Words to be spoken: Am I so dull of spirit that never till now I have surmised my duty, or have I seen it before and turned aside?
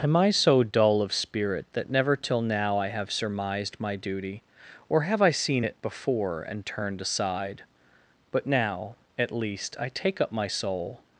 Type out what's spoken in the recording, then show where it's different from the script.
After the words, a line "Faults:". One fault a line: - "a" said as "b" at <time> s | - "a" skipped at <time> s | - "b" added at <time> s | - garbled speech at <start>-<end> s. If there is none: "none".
Am I so dull of spirit that never till now I have surmised my duty, or have I seen it before and turned aside? But now, at least, I take up my soul
Faults:
- "But now at least I take up my soul" added at 8.3 s